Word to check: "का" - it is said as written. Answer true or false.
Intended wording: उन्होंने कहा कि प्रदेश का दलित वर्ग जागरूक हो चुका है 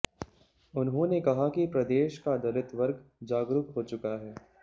true